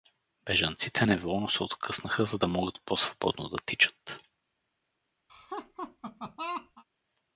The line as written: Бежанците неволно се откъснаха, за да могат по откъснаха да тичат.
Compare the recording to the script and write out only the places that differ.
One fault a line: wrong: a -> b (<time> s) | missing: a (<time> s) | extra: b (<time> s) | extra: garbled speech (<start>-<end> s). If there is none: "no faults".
wrong: откъснаха -> свободно (3.0 s)